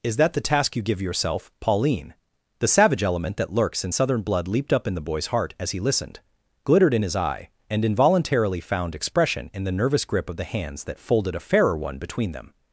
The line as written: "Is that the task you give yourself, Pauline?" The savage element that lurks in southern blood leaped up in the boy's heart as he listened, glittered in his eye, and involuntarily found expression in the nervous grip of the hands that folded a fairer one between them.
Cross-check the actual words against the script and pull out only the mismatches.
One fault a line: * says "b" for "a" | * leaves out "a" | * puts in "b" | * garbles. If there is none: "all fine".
all fine